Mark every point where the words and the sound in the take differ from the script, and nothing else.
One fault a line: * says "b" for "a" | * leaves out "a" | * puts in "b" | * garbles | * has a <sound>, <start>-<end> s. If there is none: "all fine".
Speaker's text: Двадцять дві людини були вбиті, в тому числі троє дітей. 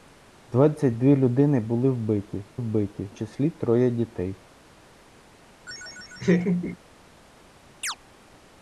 * says "вбиті" for "тому"
* has a laugh, 5.7-6.8 s
* has a chirp, 7.8-8.0 s